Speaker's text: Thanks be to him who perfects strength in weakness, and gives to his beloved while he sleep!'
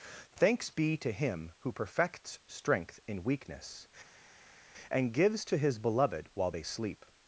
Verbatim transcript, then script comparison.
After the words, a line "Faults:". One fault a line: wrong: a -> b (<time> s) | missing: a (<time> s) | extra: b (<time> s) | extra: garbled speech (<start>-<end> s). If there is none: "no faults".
Thanks be to him who perfects strength in weakness, and gives to his beloved while they sleep!'
Faults:
wrong: he -> they (6.5 s)